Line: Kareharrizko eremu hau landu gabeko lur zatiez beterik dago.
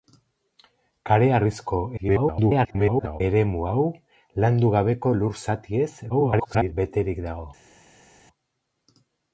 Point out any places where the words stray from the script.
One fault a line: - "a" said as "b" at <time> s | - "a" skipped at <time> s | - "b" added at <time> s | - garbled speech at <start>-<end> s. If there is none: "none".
- garbled speech at 2.0-3.2 s
- garbled speech at 6.1-6.7 s